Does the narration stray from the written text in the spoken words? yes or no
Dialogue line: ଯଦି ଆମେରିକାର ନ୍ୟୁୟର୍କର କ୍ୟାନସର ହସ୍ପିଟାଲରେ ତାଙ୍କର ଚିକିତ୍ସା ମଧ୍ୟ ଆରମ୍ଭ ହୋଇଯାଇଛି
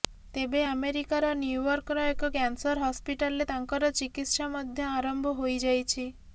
yes